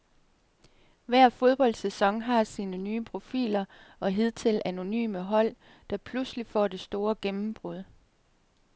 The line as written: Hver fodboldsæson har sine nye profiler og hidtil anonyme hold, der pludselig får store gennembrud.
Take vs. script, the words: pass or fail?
fail